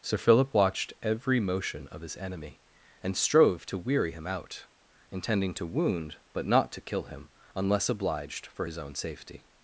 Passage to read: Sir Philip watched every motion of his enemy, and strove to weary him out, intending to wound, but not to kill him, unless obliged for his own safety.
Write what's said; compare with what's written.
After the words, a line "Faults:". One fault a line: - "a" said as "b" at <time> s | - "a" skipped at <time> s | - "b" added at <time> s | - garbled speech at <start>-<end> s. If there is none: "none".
Sir Philip watched every motion of his enemy, and strove to weary him out, intending to wound, but not to kill him, unless obliged for his own safety.
Faults:
none